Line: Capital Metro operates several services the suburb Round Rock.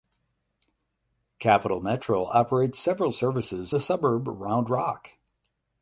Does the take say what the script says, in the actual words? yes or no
yes